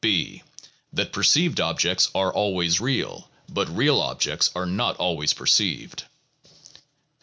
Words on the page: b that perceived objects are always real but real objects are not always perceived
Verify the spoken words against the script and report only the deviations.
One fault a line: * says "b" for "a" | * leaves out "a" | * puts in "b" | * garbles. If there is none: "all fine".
all fine